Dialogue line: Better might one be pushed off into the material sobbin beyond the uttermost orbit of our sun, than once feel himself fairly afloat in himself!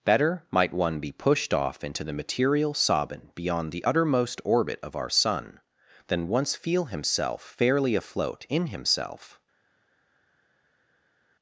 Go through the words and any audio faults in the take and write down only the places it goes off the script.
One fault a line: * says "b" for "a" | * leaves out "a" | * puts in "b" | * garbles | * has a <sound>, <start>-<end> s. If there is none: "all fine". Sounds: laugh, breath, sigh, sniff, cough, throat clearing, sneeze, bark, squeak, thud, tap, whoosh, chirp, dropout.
all fine